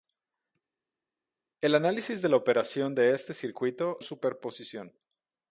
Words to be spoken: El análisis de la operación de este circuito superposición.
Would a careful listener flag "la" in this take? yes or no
no